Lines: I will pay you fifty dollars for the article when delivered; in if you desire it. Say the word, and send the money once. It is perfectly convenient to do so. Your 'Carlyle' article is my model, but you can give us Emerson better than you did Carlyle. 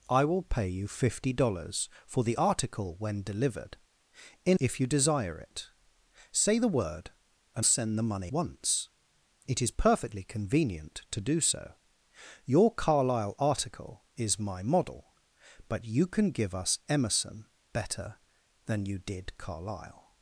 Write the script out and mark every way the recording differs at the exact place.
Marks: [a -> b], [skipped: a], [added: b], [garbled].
I will pay you fifty dollars for the article when delivered; in if you desire it. Say the word, and send the money once. It is perfectly convenient to do so. Your 'Carlyle' article is my model, but you can give us Emerson better than you did Carlyle.